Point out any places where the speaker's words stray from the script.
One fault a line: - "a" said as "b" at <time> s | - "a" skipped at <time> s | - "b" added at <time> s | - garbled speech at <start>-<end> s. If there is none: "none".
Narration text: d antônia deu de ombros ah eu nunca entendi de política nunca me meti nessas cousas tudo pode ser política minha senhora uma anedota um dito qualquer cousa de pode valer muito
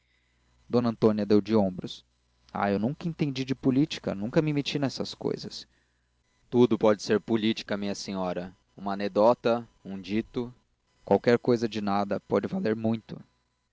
- "nada" added at 11.8 s